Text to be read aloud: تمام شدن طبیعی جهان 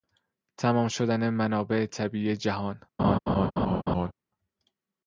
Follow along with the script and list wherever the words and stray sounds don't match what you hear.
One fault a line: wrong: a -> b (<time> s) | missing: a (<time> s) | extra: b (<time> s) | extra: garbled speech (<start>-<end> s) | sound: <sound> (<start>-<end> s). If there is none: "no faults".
extra: منابع (1.3 s)
sound: laugh (3.0-4.1 s)